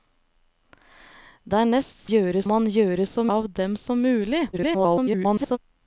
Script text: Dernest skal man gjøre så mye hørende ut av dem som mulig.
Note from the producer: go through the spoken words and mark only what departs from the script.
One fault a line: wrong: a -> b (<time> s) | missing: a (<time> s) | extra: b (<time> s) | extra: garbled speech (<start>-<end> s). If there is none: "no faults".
wrong: skal -> gjøre (2.1 s)
missing: mye hørende ut (3.2 s)
extra: garbled speech (4.5-5.6 s)